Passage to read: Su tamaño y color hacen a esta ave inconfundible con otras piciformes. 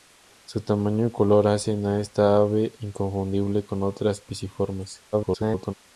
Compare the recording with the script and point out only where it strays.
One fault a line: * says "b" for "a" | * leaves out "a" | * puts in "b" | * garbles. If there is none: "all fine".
* garbles